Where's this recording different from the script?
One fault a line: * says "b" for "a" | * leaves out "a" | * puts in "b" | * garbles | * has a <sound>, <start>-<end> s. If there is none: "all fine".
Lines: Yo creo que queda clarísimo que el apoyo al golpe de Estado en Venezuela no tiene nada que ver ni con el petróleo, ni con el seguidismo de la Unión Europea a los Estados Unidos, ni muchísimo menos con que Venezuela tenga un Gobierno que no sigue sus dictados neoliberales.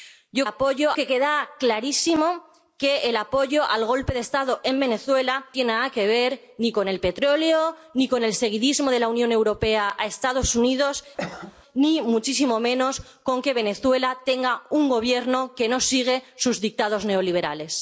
* says "apoyo" for "creo"
* leaves out "no"
* has a cough, 11.2-11.6 s